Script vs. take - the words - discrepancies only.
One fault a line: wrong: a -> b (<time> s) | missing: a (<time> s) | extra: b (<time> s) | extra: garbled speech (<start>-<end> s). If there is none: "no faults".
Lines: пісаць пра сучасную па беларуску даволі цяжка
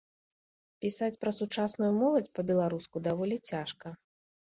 extra: моладзь (2.0 s)